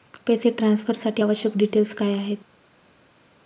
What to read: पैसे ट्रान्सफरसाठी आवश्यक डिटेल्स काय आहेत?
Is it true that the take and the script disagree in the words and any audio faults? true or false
false